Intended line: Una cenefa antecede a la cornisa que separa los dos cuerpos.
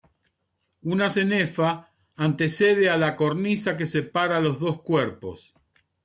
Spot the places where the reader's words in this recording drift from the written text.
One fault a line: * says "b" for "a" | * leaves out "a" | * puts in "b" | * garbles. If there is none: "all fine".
all fine